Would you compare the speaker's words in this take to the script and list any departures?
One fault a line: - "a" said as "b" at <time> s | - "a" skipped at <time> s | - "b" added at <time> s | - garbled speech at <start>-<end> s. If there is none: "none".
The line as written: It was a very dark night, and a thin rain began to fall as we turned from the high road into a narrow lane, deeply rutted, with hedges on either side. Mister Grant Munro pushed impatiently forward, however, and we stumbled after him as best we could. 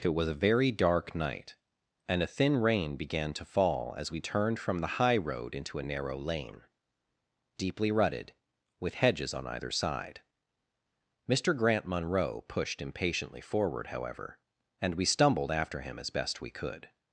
none